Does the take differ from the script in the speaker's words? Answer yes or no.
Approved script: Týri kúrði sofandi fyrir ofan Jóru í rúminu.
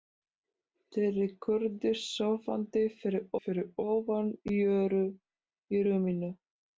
yes